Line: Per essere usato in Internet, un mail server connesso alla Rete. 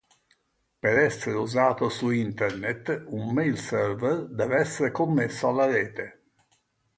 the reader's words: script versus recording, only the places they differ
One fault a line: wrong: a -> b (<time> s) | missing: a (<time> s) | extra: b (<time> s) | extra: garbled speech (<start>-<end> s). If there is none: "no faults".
wrong: in -> su (1.9 s)
extra: deve essere (4.3 s)